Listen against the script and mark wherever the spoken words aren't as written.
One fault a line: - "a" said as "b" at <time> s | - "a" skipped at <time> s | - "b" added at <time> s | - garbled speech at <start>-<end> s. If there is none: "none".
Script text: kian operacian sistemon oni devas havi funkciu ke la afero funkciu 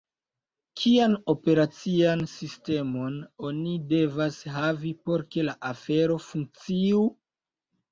- "funkciu" said as "por" at 5.1 s